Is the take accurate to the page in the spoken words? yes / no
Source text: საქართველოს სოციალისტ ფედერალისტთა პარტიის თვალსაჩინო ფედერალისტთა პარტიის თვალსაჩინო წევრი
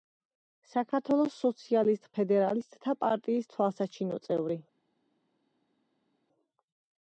no